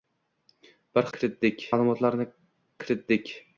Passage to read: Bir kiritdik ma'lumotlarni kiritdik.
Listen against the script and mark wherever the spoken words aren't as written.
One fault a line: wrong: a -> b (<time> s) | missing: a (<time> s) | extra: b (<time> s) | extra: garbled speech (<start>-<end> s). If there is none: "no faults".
no faults